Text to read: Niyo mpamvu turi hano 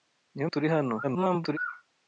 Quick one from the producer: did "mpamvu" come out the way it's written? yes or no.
no